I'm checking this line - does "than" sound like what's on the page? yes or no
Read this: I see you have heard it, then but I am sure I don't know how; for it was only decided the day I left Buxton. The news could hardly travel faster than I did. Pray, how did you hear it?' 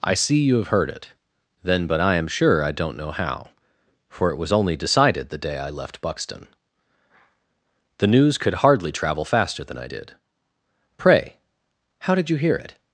yes